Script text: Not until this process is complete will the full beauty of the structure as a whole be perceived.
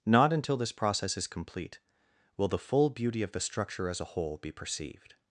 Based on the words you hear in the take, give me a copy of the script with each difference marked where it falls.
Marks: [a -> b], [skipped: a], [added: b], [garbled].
Not until this process is complete will the full beauty of the structure as a whole be perceived.